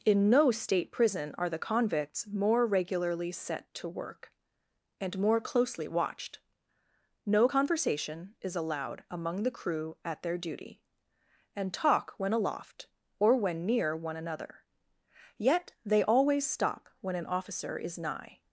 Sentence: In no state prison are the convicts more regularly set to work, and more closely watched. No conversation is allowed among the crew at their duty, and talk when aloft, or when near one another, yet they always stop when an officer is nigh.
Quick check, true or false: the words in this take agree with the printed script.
true